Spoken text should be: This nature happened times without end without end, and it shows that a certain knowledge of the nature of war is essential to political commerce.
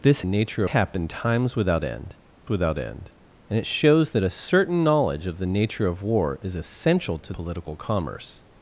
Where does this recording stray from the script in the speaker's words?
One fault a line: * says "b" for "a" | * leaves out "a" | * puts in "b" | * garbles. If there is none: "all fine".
all fine